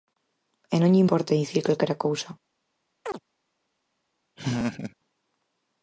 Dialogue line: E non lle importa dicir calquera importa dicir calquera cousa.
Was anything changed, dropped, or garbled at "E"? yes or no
no